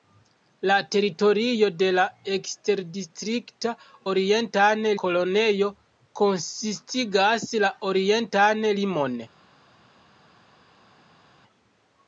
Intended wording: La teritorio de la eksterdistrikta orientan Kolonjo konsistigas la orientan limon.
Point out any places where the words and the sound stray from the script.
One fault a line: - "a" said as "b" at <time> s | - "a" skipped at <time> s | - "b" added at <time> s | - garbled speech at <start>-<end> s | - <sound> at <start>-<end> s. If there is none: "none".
none